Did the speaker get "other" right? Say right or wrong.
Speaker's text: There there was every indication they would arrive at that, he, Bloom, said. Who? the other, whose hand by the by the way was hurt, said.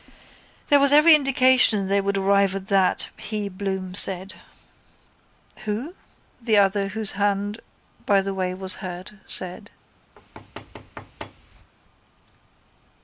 right